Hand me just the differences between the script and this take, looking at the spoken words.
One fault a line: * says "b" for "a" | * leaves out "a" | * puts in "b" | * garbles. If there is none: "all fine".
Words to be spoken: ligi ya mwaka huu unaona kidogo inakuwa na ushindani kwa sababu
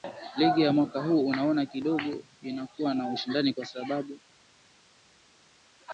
all fine